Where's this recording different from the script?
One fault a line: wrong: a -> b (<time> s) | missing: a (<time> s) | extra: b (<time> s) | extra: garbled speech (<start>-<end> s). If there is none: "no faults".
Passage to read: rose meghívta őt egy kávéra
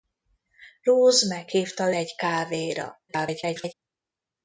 missing: őt (1.9 s)
extra: garbled speech (3.1-3.7 s)